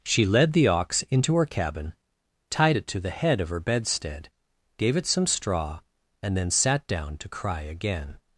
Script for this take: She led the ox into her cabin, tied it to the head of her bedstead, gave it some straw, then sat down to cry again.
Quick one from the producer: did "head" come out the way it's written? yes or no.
yes